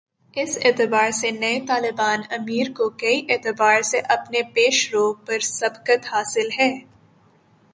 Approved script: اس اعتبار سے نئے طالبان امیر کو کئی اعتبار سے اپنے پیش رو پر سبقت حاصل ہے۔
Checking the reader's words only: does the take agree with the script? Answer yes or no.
yes